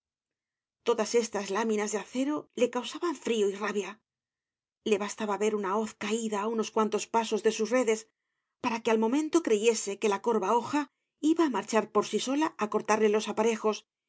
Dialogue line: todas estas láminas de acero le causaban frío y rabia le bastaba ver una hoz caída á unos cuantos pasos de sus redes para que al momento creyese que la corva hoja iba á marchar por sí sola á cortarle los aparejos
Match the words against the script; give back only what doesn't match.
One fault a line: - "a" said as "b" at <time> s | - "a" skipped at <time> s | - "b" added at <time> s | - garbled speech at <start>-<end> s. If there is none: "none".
none